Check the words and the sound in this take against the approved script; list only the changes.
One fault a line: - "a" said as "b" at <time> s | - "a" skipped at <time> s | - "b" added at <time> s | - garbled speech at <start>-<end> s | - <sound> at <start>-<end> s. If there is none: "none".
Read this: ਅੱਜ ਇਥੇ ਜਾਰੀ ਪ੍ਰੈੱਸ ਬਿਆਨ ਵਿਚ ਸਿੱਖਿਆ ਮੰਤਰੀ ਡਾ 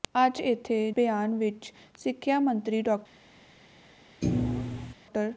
- "ਜਾਰੀ ਪ੍ਰੈੱਸ" skipped at 0.8 s
- thud at 4.2-4.9 s